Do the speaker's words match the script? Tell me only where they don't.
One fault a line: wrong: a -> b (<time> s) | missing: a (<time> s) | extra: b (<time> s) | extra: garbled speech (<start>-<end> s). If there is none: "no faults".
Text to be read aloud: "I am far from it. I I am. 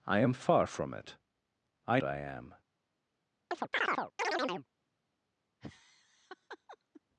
no faults